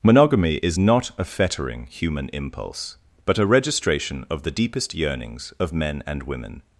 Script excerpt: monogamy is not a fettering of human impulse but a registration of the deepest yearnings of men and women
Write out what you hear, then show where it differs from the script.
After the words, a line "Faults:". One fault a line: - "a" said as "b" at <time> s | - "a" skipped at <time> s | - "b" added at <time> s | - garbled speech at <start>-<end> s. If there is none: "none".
monogamy is not a fettering human impulse but a registration of the deepest yearnings of men and women
Faults:
- "of" skipped at 1.8 s